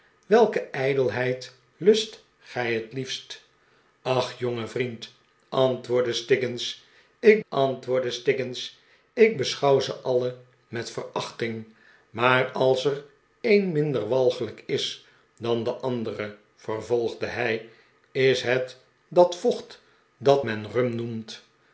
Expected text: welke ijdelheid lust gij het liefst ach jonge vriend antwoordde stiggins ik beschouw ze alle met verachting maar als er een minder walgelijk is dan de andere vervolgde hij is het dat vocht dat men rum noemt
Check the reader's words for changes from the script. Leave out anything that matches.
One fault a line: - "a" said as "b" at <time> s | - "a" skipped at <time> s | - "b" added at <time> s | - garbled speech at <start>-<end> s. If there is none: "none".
- "antwoordde stiggins ik" added at 7.5 s